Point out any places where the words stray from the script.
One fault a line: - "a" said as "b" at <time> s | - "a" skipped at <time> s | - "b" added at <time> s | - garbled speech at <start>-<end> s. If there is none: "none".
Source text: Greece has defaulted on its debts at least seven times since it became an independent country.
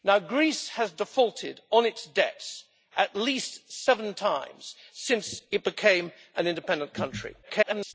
- garbled speech at 7.4-7.9 s